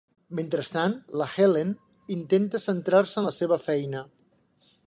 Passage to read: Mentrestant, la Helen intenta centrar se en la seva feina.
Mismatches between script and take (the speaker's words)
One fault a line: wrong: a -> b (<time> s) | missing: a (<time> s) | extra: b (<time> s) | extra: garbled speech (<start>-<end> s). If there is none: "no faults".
no faults